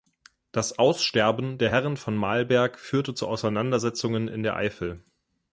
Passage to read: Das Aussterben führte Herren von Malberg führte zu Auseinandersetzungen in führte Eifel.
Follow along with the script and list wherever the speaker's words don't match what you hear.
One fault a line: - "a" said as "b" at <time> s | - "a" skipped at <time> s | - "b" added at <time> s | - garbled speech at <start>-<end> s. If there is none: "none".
- "führte" said as "der" at 1.5 s
- "führte" said as "der" at 4.4 s